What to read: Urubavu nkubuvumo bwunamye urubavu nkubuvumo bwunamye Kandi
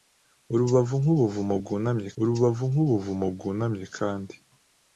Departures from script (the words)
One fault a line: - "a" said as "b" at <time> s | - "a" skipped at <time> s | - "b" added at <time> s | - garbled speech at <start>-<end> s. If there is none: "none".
none